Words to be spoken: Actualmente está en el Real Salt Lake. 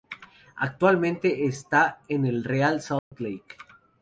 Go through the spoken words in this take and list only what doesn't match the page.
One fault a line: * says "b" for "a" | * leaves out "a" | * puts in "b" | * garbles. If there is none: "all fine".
all fine